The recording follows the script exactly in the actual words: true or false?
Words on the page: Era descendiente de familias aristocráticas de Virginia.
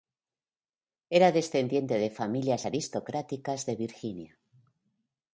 true